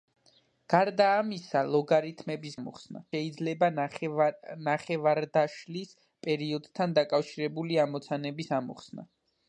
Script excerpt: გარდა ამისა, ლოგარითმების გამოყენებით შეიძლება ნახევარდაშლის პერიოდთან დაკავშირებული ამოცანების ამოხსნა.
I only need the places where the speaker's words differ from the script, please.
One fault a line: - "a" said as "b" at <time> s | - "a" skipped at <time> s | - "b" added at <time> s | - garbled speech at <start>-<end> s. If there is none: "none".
- "გამოყენებით" said as "ამოხსნა" at 2.6 s